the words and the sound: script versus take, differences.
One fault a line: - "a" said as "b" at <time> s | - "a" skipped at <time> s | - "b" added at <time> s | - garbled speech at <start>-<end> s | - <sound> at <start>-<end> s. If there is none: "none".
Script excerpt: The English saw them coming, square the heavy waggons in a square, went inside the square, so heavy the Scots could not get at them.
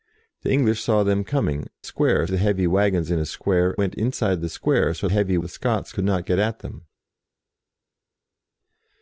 none